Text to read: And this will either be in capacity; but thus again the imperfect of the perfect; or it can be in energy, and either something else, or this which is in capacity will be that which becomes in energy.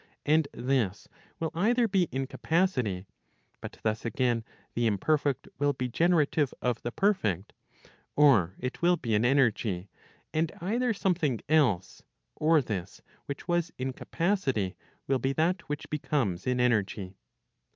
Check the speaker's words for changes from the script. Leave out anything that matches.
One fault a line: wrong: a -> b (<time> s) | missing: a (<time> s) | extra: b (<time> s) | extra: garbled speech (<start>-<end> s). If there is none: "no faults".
extra: will be generative (5.6 s)
wrong: can -> will (8.8 s)
wrong: is -> was (13.5 s)